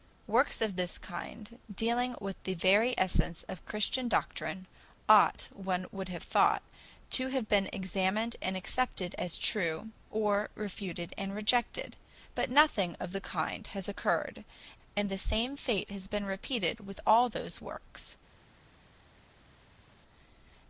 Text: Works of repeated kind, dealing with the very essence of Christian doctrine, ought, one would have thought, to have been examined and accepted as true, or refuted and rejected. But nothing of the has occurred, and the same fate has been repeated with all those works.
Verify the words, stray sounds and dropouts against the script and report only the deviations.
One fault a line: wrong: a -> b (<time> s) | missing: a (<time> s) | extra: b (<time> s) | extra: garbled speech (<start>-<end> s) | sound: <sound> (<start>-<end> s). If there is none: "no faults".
wrong: repeated -> this (0.8 s)
extra: kind (13.2 s)